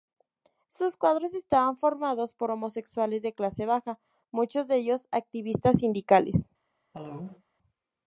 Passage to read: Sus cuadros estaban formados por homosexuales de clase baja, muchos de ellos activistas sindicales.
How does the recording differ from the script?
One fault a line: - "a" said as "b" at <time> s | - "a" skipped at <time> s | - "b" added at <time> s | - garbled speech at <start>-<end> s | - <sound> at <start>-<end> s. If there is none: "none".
- cough at 6.9-7.4 s